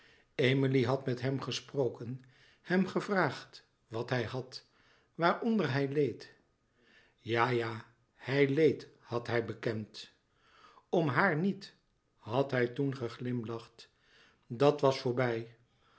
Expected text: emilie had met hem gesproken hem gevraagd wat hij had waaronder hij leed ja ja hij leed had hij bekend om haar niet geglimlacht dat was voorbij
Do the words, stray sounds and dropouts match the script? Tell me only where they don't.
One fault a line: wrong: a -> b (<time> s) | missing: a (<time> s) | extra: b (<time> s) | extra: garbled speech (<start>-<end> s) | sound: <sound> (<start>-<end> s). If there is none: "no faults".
extra: had hij toen (12.2 s)